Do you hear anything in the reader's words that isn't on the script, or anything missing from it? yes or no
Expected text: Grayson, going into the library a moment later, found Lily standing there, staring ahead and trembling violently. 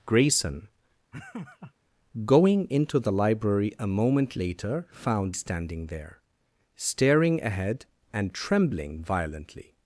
yes